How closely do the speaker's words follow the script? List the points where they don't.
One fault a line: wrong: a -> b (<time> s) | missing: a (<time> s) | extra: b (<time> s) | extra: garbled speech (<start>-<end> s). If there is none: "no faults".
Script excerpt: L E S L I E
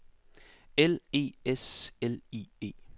no faults